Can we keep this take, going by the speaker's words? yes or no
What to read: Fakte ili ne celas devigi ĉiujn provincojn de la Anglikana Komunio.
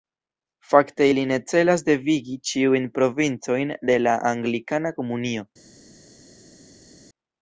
yes